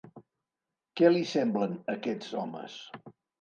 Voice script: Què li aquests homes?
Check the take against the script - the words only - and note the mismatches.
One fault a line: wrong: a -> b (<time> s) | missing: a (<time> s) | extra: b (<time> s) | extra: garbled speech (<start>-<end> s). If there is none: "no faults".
extra: semblen (1.3 s)